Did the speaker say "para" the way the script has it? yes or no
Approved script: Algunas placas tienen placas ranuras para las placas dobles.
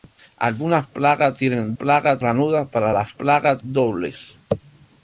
yes